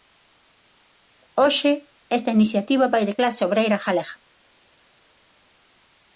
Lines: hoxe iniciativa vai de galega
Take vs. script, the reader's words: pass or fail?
fail